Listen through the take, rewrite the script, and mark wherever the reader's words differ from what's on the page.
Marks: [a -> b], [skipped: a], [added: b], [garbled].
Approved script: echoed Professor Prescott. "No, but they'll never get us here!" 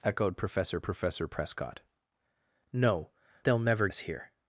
echoed Professor [added: Professor] Prescott. "No, [skipped: but] they'll never [skipped: get] us here!"